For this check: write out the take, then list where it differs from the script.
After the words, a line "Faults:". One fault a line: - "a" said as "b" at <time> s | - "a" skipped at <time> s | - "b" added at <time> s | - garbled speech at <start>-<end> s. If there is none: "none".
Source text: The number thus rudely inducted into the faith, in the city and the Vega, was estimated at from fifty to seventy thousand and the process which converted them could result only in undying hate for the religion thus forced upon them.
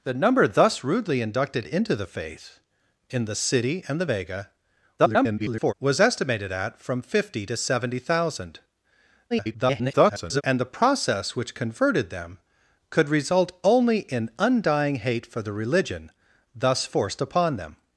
The number thus rudely inducted into the faith, in the city and the Vega, [garbled] was estimated at from fifty to seventy thousand [garbled] and the process which converted them could result only in undying hate for the religion thus forced upon them.
Faults:
- garbled speech at 5.0-5.7 s
- garbled speech at 9.3-10.4 s